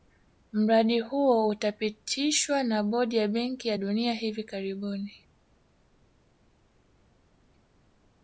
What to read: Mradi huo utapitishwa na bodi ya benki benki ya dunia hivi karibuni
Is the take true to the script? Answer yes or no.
no